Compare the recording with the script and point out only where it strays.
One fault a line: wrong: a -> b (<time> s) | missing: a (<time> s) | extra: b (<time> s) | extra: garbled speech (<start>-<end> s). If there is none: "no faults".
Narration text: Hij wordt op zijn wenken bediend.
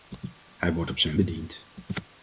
missing: wenken (1.2 s)